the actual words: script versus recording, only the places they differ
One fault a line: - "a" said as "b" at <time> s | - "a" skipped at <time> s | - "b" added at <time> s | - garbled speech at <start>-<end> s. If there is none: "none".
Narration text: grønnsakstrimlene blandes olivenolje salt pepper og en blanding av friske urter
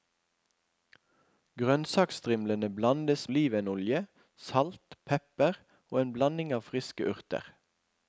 none